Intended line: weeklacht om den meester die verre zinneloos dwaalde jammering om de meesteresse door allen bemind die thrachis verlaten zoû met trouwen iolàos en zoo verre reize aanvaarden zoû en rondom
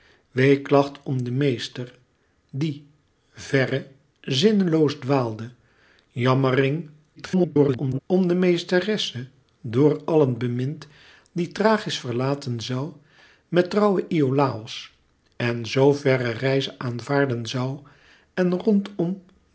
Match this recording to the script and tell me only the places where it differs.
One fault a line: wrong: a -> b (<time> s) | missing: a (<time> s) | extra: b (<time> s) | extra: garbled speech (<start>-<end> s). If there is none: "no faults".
extra: garbled speech (7.2-8.0 s)